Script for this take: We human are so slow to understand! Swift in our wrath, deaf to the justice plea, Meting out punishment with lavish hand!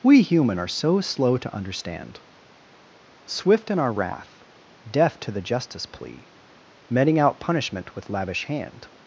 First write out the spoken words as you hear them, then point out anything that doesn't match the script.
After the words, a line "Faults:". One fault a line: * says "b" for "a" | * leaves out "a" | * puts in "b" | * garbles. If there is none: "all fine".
We human are so slow to understand! Swift in our wrath, deaf to the justice plea, Meting out punishment with lavish hand!
Faults:
all fine